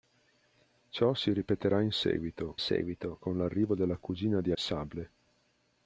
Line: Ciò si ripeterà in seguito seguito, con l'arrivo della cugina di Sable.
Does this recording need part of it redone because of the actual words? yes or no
no